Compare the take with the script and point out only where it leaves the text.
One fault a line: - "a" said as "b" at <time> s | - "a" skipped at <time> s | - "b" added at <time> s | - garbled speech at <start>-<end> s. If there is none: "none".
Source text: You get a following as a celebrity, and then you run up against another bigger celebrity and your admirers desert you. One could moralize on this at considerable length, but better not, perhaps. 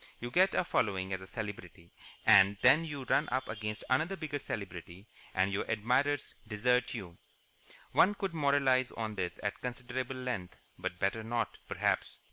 none